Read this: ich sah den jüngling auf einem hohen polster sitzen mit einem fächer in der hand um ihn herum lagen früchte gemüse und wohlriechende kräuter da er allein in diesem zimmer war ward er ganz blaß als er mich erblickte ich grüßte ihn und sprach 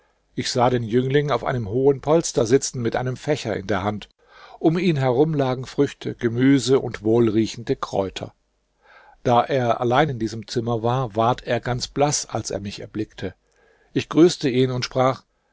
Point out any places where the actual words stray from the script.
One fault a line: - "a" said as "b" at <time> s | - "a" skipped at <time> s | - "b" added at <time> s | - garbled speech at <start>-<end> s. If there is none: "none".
none